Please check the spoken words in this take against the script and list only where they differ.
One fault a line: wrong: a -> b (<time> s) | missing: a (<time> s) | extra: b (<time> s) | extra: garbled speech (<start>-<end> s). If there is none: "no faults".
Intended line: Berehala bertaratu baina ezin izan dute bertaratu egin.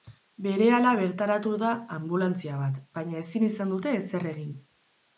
extra: da anbulantzia bat (1.6 s)
wrong: bertaratu -> ezer (4.1 s)